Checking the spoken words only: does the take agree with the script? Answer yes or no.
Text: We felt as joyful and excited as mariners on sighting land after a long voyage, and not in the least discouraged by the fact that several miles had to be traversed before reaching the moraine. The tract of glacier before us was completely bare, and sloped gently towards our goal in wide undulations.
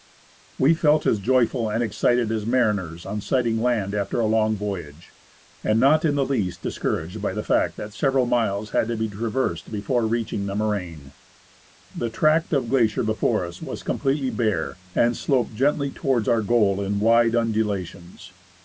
yes